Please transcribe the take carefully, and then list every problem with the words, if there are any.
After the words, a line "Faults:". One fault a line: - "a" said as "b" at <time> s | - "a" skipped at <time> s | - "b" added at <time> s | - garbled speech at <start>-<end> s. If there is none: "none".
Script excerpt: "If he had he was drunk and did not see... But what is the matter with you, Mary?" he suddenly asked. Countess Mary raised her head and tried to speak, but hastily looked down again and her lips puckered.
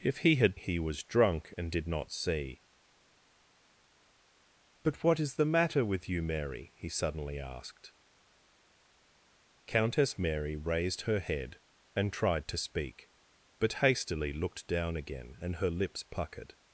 "If he had he was drunk and did not see... But what is the matter with you, Mary?" he suddenly asked. Countess Mary raised her head and tried to speak, but hastily looked down again and her lips puckered.
Faults:
none